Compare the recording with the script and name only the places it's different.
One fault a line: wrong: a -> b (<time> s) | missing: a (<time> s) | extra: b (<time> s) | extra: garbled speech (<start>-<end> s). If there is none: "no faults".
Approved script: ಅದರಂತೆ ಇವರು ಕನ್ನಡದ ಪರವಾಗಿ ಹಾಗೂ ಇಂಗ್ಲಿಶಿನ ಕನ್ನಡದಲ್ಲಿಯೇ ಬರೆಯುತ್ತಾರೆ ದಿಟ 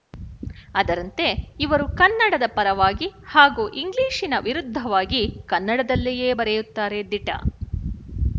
extra: ವಿರುದ್ಧವಾಗಿ (4.4 s)